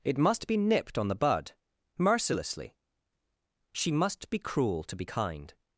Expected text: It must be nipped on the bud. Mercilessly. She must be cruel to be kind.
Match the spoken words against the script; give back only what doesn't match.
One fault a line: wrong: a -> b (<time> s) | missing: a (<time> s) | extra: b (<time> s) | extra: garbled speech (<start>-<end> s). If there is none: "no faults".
no faults